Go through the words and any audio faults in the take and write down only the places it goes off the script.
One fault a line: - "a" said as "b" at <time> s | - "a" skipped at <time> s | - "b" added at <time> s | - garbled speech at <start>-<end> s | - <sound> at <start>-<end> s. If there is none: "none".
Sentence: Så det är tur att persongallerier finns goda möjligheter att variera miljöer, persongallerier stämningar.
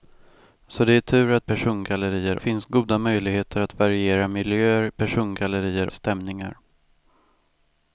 none